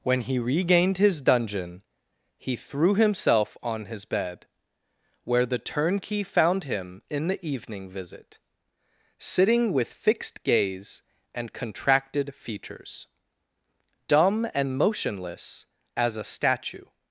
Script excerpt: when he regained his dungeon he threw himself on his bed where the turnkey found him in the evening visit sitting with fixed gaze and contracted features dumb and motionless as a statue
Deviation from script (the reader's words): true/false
false